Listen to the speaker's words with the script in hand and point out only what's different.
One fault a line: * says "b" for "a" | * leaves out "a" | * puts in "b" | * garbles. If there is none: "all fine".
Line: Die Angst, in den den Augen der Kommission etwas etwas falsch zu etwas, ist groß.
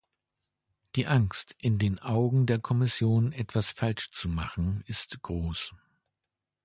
* leaves out "den"
* leaves out "etwas"
* says "machen" for "etwas"